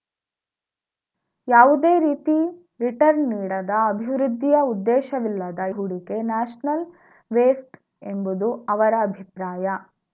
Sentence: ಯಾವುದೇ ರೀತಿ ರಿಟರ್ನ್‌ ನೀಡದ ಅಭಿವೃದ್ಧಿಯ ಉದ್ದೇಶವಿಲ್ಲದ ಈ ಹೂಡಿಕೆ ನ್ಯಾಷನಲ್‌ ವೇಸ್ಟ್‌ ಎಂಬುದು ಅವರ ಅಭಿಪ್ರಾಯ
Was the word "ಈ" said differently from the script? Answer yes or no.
yes